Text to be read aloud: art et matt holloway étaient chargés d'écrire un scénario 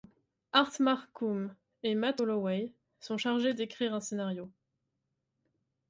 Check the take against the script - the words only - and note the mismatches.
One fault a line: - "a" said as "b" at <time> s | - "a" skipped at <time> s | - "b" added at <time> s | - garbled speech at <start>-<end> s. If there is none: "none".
- "marcum" added at 0.8 s
- "étaient" said as "sont" at 3.0 s